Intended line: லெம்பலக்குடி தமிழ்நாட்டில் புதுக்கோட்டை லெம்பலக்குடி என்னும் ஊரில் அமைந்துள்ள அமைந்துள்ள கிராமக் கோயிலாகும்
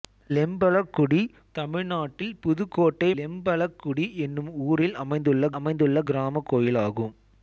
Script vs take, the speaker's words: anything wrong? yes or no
no